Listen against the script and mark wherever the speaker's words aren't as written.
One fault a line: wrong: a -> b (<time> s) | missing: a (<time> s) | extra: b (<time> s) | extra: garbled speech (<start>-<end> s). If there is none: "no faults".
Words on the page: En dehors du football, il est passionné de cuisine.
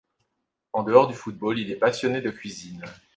no faults